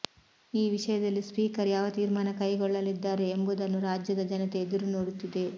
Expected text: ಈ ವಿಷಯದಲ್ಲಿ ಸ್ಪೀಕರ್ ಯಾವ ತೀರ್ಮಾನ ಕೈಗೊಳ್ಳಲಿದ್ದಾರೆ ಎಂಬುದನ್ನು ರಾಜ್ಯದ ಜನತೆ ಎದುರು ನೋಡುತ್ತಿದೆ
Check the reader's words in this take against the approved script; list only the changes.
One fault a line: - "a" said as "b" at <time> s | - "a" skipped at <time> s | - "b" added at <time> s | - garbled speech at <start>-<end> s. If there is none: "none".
none